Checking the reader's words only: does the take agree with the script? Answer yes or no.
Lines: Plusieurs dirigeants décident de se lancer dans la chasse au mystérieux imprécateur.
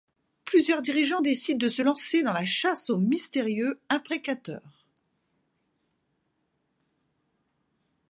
yes